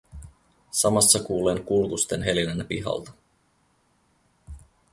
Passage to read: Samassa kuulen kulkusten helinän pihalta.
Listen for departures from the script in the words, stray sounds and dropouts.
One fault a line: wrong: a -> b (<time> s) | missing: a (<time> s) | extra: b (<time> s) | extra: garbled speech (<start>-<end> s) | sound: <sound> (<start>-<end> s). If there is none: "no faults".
no faults